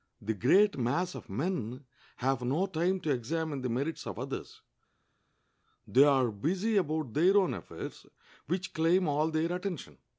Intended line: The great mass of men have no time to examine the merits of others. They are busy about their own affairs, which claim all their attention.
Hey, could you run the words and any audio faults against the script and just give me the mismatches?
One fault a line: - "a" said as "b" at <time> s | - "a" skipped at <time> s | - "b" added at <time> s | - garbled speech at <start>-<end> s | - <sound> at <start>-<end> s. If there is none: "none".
none